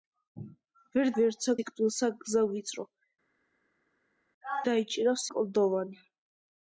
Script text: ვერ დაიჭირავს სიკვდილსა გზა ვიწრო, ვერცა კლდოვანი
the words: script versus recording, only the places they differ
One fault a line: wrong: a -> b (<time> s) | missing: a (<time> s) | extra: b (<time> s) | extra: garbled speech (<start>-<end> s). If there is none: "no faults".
wrong: დაიჭირავს -> ვერცა (1.2 s)
wrong: ვერცა -> დაიჭირავს (4.7 s)